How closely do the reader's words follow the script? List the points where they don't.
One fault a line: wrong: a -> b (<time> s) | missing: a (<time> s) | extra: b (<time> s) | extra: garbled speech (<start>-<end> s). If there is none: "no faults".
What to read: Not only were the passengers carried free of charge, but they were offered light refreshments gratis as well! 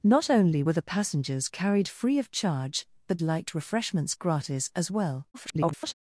missing: they were offered (3.2 s)
extra: garbled speech (5.3-5.9 s)